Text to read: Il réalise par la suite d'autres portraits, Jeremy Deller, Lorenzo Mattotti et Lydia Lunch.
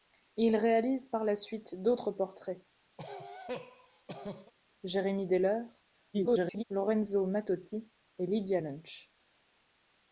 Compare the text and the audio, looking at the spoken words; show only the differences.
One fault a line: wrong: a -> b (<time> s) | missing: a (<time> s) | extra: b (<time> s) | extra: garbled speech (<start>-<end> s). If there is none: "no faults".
extra: garbled speech (6.1-6.6 s)